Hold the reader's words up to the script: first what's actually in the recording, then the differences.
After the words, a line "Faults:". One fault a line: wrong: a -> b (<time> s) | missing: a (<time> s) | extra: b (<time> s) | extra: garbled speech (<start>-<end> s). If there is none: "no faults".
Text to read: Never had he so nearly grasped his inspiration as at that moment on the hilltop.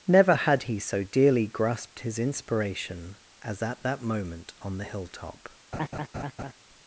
Never had he so dearly grasped his inspiration as at that moment on the hilltop.
Faults:
wrong: nearly -> dearly (1.0 s)